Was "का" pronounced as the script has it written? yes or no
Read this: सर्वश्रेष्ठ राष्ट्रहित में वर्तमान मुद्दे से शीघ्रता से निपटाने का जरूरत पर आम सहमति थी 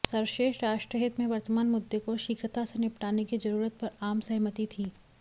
no